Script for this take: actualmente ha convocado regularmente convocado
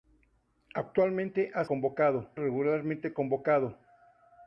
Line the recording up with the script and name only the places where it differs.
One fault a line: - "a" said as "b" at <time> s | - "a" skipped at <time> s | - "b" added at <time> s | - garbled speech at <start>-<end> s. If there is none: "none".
none